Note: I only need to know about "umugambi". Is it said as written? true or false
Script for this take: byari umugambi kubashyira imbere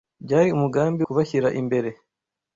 true